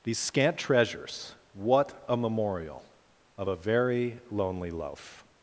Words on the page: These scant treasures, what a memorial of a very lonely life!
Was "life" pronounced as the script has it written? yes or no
no